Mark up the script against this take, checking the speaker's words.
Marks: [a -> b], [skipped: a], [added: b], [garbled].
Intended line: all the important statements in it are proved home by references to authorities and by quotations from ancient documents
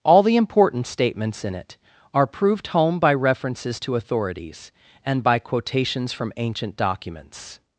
all the important statements in it are proved home by references to authorities and by quotations from ancient documents